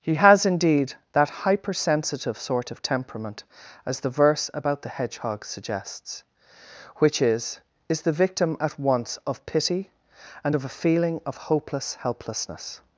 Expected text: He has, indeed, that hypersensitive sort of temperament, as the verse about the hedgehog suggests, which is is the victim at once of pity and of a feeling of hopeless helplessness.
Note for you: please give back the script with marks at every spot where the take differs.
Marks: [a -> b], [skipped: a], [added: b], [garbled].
He has, indeed, that hypersensitive sort of temperament, as the verse about the hedgehog suggests, which is is the victim at once of pity and of a feeling of hopeless helplessness.